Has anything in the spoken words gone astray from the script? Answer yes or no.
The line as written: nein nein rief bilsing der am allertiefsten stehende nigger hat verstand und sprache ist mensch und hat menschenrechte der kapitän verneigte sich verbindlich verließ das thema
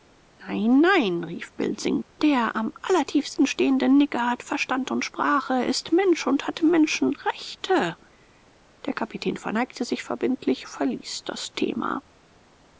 no